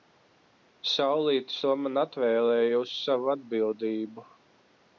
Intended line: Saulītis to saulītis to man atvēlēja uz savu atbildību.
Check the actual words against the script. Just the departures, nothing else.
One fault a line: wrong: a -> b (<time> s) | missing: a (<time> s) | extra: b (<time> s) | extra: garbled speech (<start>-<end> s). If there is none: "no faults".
missing: saulītis to (1.7 s)